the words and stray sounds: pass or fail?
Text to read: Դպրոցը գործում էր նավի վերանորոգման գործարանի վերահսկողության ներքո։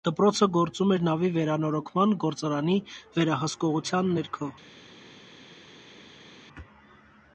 pass